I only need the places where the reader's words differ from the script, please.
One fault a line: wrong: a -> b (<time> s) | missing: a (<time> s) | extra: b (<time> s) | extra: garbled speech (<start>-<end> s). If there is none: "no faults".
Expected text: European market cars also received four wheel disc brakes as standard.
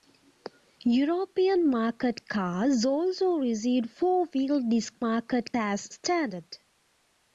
wrong: brakes -> market (5.0 s)